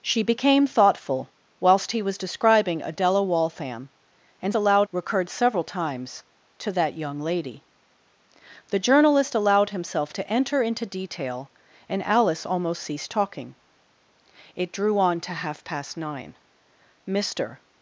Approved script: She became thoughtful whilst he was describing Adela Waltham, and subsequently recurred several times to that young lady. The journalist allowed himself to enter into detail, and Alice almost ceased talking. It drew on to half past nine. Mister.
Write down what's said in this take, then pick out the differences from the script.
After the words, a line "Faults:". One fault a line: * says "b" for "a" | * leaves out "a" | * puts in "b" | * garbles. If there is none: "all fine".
She became thoughtful whilst he was describing Adela Waltham, and allowed recurred several times to that young lady. The journalist allowed himself to enter into detail, and Alice almost ceased talking. It drew on to half past nine. Mister.
Faults:
* says "allowed" for "subsequently"